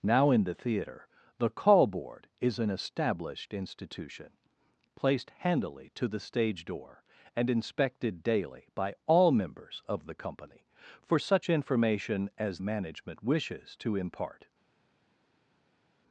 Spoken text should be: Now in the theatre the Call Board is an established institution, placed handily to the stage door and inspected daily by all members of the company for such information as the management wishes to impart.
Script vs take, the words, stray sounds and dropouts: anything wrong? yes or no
yes